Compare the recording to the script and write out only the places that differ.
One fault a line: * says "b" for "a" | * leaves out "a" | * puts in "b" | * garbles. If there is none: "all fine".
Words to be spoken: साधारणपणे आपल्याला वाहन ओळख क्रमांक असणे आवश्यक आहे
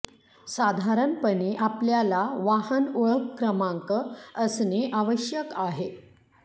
all fine